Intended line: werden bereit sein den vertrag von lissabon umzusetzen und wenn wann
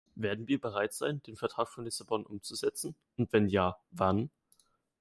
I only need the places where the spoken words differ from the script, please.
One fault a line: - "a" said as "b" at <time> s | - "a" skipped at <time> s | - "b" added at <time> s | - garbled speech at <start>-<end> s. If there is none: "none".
- "wir" added at 0.5 s
- "ja" added at 3.5 s